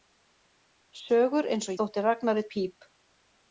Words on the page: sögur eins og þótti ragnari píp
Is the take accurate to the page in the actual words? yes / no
yes